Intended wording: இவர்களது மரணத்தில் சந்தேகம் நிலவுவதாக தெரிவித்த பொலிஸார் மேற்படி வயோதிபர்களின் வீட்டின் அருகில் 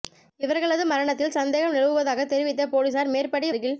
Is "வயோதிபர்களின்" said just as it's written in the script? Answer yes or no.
no